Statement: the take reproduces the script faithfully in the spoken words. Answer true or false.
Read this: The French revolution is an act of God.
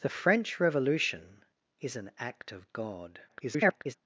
false